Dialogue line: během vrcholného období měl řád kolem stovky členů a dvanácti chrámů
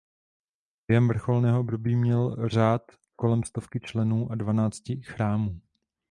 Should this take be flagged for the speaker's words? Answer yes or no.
no